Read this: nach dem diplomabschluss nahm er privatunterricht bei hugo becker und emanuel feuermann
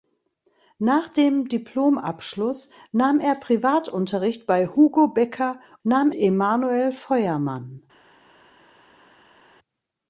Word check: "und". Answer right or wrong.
wrong